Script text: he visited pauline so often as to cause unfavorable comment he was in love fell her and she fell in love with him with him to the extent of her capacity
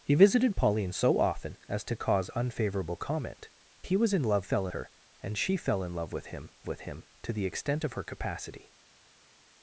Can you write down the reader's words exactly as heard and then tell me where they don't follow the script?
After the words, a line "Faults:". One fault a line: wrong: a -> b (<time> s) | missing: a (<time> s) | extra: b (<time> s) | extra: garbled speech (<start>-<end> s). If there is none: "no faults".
he visited pauline so often as to cause unfavorable comment he was in love fell her and she fell in love with him with him to the extent of her capacity
Faults:
no faults